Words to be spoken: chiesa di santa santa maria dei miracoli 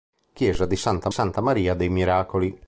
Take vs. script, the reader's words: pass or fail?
pass